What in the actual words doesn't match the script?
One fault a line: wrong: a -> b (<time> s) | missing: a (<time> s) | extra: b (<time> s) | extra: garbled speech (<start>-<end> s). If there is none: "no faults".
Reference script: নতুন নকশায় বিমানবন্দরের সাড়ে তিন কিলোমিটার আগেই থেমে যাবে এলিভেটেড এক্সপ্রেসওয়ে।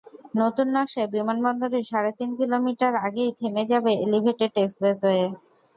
no faults